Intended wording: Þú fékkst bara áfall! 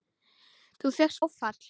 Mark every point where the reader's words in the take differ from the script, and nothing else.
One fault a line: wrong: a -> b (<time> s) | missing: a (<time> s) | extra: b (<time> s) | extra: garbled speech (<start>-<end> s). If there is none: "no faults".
missing: bara (1.2 s)